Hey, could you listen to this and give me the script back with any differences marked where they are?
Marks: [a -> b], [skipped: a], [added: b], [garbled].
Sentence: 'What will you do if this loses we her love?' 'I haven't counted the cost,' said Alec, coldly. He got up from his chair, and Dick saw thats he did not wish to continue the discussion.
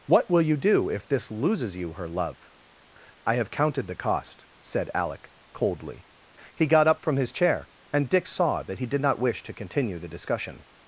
'What will you do if this loses [we -> you] her love?' 'I [haven't -> have] counted the cost,' said Alec, coldly. He got up from his chair, and Dick saw [thats -> that] he did not wish to continue the discussion.